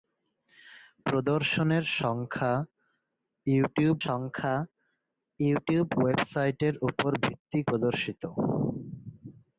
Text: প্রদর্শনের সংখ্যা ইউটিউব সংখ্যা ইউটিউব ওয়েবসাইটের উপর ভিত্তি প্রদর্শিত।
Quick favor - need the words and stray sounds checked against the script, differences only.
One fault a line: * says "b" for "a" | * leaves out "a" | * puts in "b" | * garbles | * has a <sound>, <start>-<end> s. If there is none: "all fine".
all fine